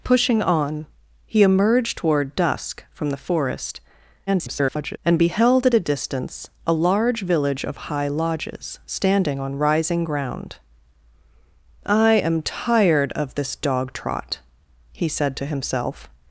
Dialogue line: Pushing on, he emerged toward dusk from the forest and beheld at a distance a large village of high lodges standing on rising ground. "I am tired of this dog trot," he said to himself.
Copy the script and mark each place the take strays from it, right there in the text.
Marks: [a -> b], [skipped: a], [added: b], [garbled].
Pushing on, he emerged toward dusk from the forest [garbled] and beheld at a distance a large village of high lodges standing on rising ground. "I am tired of this dog trot," he said to himself.